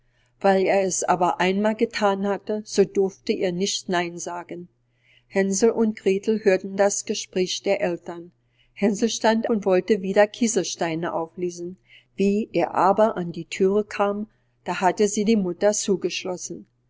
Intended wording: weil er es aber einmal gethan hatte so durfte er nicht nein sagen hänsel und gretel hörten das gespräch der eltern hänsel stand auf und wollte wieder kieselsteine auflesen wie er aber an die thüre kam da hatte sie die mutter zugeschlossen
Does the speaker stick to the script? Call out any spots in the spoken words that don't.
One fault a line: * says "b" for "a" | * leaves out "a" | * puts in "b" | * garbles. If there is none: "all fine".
* leaves out "auf"